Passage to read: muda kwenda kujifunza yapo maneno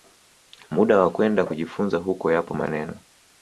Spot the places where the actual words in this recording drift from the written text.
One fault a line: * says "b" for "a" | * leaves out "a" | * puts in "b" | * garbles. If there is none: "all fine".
* puts in "wa"
* puts in "huko"